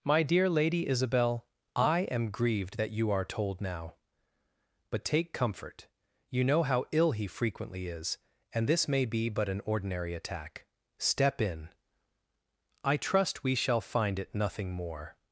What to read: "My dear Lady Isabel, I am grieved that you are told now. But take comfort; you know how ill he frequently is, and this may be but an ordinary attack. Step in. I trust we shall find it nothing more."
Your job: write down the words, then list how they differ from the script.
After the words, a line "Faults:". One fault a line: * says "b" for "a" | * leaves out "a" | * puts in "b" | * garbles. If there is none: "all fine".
"My dear Lady Isabel, I am grieved that you are told now. But take comfort; you know how ill he frequently is, and this may be but an ordinary attack. Step in. I trust we shall find it nothing more."
Faults:
all fine